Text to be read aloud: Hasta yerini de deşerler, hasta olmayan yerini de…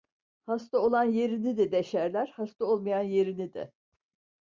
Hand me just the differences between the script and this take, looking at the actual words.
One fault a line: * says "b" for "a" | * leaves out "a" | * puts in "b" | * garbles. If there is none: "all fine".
* puts in "olan"